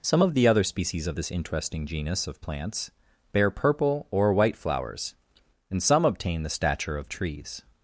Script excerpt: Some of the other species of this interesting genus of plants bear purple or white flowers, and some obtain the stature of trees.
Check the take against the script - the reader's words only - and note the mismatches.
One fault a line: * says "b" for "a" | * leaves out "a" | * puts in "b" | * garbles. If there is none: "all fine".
all fine